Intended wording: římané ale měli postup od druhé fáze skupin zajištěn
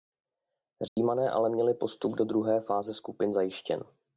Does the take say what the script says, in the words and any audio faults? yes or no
no